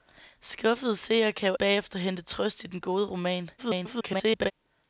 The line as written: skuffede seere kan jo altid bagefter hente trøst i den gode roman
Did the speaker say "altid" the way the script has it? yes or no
no